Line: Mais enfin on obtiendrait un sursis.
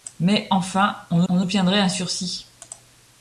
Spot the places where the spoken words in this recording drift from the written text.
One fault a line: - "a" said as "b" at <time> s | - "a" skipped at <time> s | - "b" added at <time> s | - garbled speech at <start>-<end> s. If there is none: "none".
- "on" added at 1.3 s